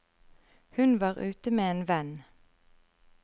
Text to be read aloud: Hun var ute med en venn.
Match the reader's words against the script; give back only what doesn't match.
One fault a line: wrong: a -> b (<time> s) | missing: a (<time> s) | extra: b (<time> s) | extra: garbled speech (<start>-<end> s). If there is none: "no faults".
no faults